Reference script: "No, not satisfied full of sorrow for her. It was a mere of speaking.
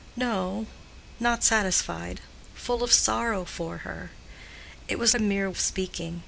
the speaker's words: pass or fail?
pass